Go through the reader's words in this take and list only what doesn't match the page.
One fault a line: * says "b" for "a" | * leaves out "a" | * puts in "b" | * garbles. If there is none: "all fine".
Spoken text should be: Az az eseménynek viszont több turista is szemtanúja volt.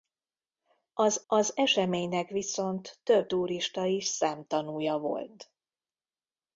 all fine